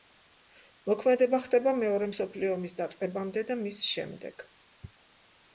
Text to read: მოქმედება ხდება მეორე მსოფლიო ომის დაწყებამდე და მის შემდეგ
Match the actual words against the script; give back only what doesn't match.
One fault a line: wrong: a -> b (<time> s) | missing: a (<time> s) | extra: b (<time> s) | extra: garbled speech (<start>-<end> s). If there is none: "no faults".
no faults